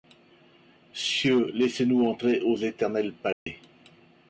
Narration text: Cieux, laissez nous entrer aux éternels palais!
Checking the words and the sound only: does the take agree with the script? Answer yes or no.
no